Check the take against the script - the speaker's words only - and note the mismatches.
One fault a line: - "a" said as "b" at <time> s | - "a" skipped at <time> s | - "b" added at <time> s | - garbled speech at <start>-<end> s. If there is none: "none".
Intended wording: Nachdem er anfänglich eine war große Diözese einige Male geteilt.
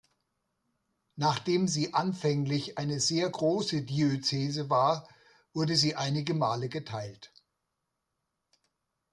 - "er" said as "sie" at 1.7 s
- "war" said as "sehr" at 3.0 s
- "war wurde sie" added at 4.7 s